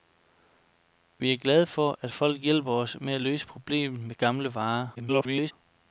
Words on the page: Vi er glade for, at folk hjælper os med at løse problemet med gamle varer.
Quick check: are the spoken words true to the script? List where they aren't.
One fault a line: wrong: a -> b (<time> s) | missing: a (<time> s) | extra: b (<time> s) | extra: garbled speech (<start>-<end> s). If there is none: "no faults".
extra: garbled speech (4.9-5.5 s)